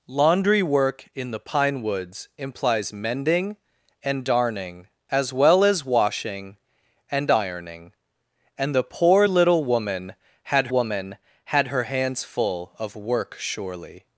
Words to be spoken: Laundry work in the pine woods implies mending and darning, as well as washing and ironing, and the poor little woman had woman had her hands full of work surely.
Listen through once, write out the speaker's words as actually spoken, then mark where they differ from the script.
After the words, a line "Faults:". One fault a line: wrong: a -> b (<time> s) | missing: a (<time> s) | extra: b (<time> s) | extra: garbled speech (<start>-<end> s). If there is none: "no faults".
Laundry work in the pine woods implies mending and darning, as well as washing and ironing, and the poor little woman had woman had her hands full of work surely.
Faults:
no faults